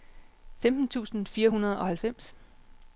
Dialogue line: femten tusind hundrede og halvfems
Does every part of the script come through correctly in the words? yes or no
no